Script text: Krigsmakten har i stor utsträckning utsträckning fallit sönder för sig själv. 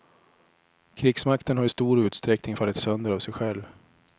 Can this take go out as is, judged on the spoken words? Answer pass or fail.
fail